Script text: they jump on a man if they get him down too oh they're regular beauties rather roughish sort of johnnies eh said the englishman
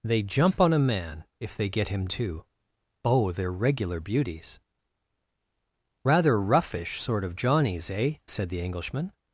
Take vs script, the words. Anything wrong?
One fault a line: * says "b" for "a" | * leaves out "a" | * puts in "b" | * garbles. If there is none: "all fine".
* leaves out "down"